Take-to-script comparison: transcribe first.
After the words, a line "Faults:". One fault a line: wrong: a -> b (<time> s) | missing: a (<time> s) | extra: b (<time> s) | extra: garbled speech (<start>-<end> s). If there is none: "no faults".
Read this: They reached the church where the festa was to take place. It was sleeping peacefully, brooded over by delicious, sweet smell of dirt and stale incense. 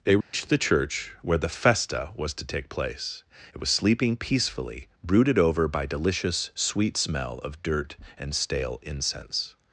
They reached the church where the festa was to take place. It was sleeping peacefully, brooded over by delicious, sweet smell of dirt and stale incense.
Faults:
no faults